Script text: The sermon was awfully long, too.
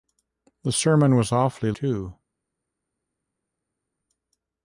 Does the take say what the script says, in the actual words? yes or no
no